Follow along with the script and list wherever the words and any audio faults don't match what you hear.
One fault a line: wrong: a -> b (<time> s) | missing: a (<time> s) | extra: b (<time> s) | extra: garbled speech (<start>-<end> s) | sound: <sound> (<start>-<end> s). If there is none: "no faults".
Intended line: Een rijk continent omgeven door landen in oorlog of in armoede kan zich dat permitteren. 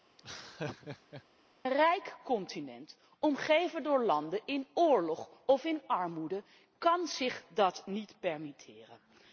sound: laugh (0.2-1.2 s)
extra: niet (7.8 s)